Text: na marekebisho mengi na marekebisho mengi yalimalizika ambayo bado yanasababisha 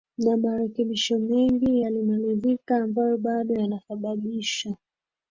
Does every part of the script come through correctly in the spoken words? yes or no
no